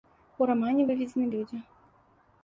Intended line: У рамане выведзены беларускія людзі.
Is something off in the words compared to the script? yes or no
yes